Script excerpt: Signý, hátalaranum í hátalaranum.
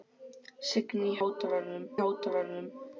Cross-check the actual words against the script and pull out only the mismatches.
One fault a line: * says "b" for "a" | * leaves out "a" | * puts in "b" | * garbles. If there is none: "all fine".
all fine